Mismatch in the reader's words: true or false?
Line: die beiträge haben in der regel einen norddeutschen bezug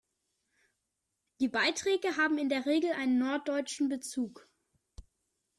false